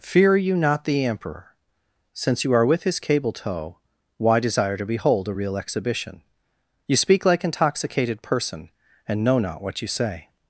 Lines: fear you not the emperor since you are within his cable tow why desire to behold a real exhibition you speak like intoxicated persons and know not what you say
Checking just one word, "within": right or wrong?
wrong